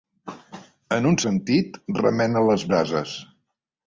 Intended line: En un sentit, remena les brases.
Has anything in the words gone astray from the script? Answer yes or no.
no